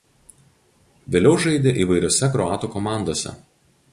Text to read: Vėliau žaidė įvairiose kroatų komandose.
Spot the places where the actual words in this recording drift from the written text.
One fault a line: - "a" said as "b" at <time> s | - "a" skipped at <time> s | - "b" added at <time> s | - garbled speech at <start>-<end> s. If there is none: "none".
none